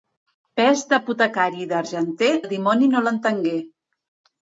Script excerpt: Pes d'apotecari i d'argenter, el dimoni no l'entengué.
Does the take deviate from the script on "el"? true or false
false